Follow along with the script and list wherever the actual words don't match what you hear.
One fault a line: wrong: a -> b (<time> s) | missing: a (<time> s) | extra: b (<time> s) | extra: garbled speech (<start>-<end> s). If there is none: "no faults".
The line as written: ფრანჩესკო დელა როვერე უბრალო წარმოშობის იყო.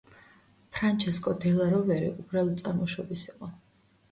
no faults